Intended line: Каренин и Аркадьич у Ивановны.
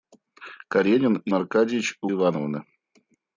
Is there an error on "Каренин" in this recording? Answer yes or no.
no